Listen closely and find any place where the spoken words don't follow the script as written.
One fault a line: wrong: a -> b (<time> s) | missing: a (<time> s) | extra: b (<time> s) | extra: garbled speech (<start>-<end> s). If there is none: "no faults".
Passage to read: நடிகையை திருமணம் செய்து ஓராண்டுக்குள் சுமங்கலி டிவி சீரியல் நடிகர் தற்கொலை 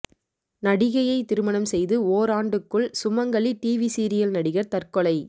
no faults